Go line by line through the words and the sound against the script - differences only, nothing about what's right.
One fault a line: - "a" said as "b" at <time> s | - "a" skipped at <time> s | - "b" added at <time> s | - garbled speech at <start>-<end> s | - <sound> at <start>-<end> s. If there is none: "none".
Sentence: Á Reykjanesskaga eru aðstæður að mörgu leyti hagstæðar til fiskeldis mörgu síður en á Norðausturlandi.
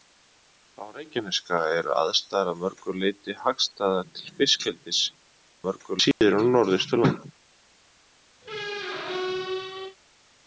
- dropout at 6.1-6.2 s
- squeak at 8.4-10.0 s